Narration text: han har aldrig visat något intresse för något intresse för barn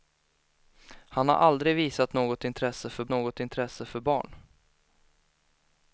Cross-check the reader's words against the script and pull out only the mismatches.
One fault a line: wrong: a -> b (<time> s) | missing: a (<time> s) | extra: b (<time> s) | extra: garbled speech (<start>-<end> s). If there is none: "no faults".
no faults